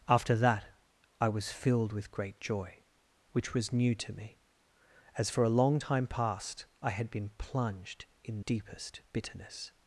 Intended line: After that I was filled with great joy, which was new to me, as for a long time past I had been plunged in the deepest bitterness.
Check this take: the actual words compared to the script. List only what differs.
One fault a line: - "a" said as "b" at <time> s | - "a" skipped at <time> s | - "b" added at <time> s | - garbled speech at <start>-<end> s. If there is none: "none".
- "the" skipped at 8.4 s